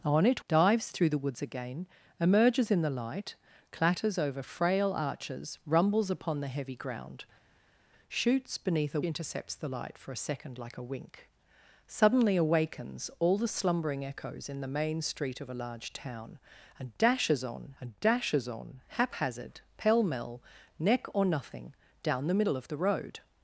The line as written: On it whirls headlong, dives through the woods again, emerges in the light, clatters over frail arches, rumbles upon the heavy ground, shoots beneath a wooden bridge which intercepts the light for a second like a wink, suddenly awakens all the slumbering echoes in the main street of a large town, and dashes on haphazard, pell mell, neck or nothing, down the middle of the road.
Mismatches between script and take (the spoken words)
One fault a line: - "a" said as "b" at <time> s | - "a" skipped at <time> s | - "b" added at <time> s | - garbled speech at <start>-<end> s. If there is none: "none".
- "whirls headlong" skipped at 0.4 s
- "wooden bridge which" skipped at 9.0 s
- "and dashes on" added at 17.8 s